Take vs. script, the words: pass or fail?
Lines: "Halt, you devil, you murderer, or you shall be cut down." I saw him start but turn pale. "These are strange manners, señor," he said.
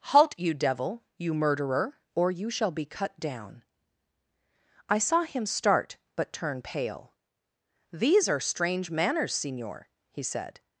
pass